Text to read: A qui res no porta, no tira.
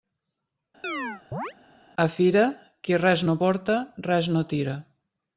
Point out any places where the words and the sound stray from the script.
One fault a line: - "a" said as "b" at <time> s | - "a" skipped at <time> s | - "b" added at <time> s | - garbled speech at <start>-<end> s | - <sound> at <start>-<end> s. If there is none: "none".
- chirp at 0.8-1.5 s
- "fira" added at 2.1 s
- "res" added at 4.1 s